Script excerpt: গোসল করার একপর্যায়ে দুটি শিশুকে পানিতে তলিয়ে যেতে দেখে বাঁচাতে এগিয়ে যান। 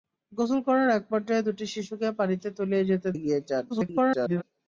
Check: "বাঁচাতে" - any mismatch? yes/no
yes